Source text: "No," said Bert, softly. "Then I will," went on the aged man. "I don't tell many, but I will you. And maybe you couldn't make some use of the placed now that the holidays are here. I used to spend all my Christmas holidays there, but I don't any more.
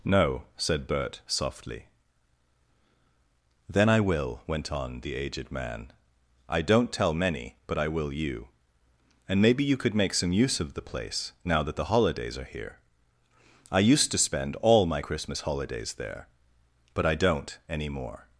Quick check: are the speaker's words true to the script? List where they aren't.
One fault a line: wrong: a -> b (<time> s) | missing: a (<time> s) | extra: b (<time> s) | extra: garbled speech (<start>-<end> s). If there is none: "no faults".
wrong: couldn't -> could (9.8 s)
wrong: placed -> place (10.9 s)